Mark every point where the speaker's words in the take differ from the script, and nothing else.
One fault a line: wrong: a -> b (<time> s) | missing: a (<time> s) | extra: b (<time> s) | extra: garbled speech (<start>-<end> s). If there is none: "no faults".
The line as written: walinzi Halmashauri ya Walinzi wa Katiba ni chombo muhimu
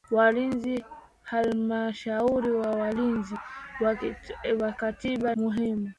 missing: ni chombo (5.3 s)